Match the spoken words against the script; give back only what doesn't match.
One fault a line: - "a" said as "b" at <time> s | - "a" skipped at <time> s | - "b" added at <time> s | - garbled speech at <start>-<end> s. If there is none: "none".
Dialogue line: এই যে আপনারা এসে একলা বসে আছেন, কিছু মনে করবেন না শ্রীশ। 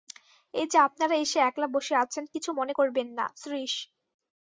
none